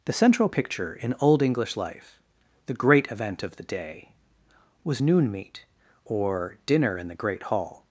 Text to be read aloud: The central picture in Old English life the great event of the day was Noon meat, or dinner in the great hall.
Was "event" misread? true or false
false